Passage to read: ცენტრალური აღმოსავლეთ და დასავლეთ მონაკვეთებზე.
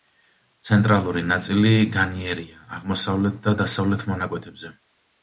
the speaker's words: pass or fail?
fail